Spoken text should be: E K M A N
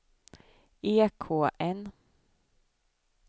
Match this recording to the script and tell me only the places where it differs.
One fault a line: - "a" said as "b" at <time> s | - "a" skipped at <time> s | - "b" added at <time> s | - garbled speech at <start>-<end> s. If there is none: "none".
- "M A" skipped at 1.5 s